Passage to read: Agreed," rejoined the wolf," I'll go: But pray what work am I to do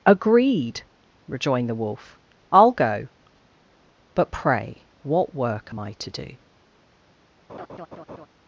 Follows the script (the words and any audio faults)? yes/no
no